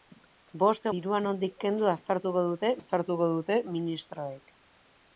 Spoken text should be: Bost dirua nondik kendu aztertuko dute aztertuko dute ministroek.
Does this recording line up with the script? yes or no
yes